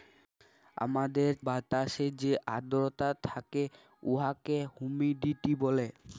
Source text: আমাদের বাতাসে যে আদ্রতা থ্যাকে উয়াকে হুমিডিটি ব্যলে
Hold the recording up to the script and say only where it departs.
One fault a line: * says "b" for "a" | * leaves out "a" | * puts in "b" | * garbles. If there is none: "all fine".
all fine